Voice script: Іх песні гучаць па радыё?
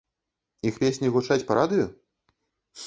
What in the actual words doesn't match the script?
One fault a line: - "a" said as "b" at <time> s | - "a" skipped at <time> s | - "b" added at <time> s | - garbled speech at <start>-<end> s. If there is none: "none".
none